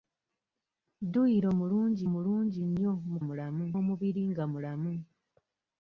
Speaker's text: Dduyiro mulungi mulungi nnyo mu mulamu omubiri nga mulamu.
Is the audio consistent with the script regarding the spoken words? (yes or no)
yes